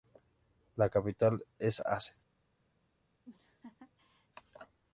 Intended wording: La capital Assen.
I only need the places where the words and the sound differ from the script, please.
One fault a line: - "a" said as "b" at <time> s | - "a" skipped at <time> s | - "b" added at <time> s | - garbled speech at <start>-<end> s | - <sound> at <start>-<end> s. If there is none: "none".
- "es" added at 1.6 s
- laugh at 3.2-4.3 s